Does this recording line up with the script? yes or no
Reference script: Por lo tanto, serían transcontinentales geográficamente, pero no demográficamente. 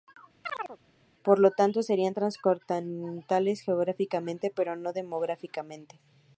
yes